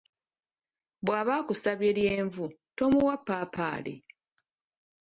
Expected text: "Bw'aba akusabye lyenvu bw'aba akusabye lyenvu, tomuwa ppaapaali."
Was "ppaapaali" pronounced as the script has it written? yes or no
yes